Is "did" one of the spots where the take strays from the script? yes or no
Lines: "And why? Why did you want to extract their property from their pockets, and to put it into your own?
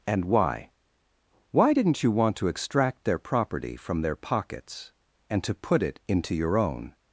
yes